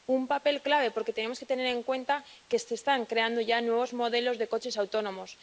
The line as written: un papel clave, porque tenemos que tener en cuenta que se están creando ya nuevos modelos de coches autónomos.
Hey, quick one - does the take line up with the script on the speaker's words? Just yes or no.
yes